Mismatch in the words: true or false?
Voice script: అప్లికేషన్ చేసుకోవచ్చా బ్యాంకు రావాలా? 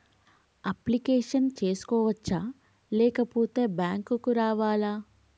true